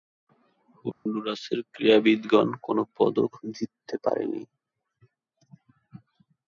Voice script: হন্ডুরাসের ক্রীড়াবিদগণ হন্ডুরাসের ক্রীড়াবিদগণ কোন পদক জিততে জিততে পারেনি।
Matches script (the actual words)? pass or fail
fail